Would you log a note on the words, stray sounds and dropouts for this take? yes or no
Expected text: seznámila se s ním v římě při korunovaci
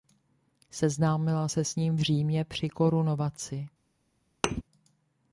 yes